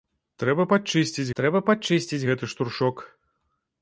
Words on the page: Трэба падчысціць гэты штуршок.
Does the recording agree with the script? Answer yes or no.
no